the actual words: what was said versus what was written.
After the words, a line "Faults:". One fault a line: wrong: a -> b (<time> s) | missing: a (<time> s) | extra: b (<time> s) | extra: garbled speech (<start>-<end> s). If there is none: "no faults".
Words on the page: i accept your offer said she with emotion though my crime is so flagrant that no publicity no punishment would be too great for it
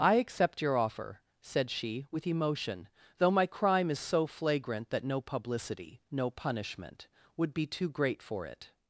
i accept your offer said she with emotion though my crime is so flagrant that no publicity no punishment would be too great for it
Faults:
no faults